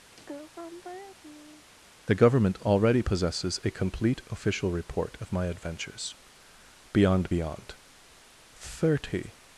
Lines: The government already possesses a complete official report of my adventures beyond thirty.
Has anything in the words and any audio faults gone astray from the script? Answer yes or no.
yes